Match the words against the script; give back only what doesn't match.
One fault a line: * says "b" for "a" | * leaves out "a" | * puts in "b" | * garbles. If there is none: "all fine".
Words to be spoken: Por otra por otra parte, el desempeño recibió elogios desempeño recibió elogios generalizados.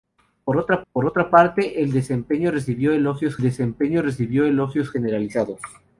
all fine